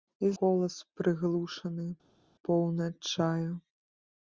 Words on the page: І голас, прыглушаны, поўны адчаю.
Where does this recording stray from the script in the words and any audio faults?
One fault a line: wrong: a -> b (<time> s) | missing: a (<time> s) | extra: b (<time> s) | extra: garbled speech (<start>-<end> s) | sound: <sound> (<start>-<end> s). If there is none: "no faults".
no faults